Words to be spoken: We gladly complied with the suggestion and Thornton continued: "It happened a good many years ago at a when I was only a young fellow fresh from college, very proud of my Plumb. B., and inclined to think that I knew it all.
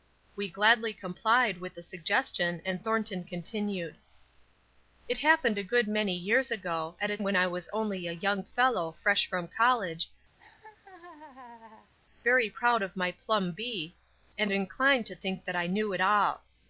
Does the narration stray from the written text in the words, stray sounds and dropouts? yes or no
yes